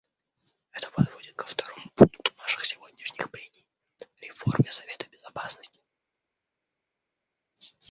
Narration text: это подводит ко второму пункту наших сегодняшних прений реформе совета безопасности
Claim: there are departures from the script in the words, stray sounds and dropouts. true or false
false